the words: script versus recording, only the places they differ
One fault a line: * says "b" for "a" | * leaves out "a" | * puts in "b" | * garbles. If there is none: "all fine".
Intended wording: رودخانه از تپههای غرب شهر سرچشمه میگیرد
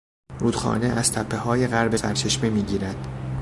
* leaves out "شهر"